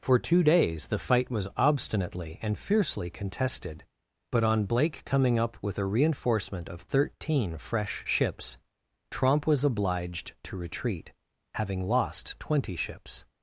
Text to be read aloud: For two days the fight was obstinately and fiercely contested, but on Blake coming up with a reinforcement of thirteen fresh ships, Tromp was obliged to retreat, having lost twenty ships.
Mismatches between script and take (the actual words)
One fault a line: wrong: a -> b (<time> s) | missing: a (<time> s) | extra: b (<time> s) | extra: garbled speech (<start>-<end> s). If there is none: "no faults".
no faults